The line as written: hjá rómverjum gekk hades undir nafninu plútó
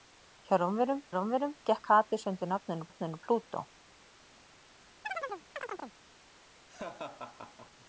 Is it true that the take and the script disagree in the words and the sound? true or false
true